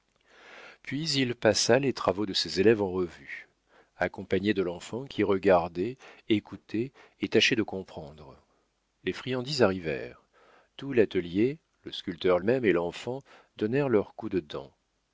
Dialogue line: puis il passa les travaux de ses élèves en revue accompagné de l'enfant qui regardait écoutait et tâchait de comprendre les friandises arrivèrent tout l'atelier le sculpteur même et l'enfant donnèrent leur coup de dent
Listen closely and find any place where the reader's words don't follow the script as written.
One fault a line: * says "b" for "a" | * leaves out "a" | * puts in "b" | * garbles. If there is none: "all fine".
all fine